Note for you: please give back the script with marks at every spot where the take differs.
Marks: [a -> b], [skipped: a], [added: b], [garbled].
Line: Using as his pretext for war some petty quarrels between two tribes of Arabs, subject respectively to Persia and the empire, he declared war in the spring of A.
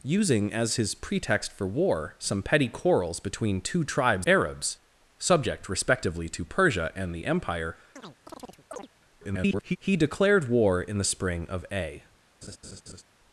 Using as his pretext for war some petty quarrels between two tribes [skipped: of] Arabs, subject respectively to Persia and the empire, [garbled] he declared war in the spring of A.